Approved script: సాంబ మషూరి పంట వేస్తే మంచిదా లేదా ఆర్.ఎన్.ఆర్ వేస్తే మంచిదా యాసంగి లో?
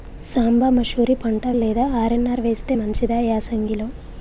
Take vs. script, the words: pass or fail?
fail